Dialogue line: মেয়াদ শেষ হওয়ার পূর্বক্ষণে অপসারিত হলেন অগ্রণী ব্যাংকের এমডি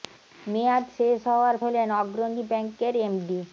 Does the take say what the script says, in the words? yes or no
no